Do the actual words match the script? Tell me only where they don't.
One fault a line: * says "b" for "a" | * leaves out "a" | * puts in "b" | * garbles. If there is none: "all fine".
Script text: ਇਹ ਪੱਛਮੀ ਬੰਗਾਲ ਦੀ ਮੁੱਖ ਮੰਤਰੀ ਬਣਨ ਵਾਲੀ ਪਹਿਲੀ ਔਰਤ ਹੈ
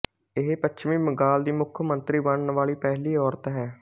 all fine